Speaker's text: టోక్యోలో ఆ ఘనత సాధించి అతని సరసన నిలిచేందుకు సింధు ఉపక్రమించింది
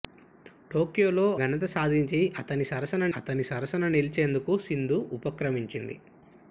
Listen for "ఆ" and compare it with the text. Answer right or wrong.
wrong